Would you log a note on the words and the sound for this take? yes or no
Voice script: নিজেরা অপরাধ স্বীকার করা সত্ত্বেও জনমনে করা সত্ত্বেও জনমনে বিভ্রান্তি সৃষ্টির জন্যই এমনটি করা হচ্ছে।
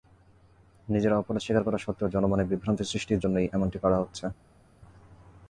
yes